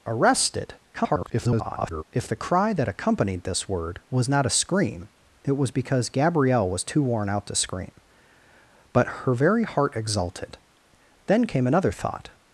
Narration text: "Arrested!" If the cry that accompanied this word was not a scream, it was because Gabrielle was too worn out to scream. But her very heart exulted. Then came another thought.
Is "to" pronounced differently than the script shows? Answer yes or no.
no